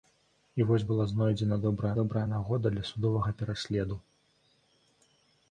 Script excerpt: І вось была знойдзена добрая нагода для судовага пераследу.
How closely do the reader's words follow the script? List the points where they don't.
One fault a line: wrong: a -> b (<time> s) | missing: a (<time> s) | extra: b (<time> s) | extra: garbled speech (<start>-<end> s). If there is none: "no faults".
extra: добрая (2.0 s)